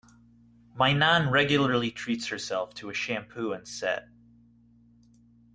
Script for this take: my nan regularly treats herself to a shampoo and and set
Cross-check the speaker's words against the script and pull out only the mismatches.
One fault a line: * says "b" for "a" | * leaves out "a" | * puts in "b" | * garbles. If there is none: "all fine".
* leaves out "and"